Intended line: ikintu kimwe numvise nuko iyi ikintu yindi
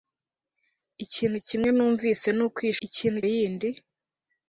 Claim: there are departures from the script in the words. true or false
false